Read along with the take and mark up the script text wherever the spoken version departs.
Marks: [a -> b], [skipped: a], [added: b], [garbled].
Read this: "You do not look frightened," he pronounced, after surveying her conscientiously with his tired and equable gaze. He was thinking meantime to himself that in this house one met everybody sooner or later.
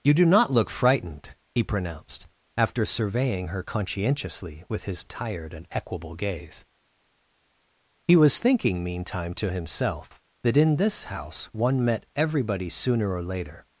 "You do not look frightened," he pronounced, after surveying her conscientiously with his tired and equable gaze. He was thinking meantime to himself that in this house one met everybody sooner or later.